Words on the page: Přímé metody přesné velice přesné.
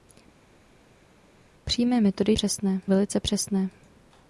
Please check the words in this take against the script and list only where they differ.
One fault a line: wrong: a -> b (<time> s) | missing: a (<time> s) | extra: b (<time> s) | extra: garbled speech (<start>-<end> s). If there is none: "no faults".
no faults